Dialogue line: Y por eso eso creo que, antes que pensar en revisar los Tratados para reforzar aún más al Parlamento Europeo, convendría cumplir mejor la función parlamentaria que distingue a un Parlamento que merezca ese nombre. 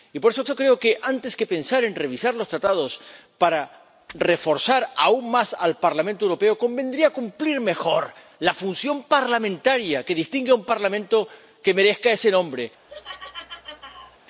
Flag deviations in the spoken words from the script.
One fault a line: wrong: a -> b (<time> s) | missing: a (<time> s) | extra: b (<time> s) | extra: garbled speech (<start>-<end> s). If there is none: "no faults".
no faults